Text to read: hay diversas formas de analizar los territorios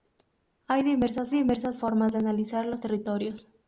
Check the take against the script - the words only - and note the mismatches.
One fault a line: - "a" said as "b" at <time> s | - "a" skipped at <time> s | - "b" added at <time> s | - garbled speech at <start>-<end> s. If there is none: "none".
- "diversas" added at 1.3 s